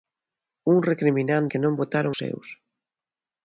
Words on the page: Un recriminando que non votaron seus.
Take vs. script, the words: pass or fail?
pass